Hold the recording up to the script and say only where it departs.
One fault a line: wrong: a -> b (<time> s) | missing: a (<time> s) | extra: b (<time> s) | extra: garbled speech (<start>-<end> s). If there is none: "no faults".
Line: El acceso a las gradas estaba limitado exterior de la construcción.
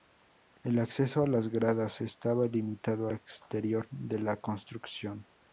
no faults